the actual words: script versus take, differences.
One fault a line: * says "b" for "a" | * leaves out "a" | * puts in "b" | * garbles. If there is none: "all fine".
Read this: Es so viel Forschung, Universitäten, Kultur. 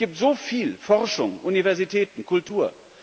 * puts in "gibt"